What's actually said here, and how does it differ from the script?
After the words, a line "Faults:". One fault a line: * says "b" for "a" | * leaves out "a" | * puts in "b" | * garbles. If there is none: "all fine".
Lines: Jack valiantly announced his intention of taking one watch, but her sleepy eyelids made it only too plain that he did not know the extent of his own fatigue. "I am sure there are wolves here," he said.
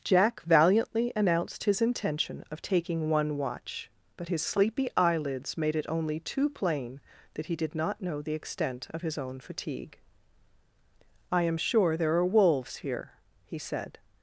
Jack valiantly announced his intention of taking one watch, but his sleepy eyelids made it only too plain that he did not know the extent of his own fatigue. "I am sure there are wolves here," he said.
Faults:
* says "his" for "her"